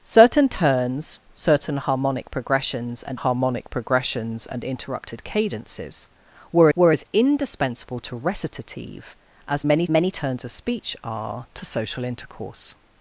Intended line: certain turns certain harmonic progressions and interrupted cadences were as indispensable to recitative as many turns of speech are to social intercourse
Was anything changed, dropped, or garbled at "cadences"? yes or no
no